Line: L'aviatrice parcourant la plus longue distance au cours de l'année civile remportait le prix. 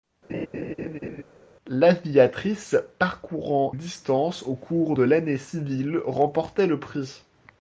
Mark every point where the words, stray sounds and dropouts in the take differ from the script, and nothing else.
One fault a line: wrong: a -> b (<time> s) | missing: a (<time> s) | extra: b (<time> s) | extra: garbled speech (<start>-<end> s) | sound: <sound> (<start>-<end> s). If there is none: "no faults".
sound: laugh (0.3-1.2 s)
missing: la plus longue (3.7 s)